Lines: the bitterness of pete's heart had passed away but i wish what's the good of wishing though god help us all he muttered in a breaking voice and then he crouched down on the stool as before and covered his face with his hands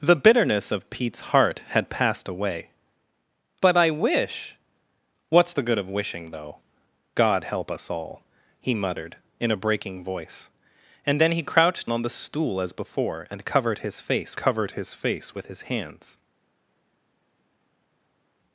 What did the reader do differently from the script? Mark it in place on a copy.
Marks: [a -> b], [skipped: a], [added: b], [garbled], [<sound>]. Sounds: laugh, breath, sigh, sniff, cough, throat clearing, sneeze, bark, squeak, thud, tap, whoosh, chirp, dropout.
the bitterness of pete's heart had passed away but i wish what's the good of wishing though god help us all he muttered in a breaking voice and then he crouched [skipped: down] on the stool as before and covered his face [added: covered his face] with his hands